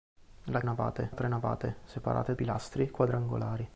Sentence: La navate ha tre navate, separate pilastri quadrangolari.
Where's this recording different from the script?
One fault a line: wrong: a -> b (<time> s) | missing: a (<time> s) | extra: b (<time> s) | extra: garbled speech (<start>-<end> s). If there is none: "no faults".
no faults